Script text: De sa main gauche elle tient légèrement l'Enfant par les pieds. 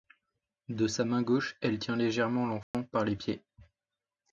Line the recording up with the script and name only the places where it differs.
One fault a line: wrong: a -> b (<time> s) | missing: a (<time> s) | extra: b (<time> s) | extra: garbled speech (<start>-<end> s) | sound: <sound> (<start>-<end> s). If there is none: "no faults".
sound: dropout (2.6-2.7 s)